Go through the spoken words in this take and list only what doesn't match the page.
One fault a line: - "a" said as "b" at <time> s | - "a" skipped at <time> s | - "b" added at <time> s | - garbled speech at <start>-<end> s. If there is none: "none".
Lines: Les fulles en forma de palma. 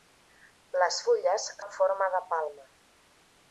none